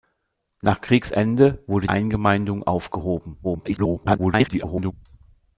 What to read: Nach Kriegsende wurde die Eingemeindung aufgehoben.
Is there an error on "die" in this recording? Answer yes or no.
yes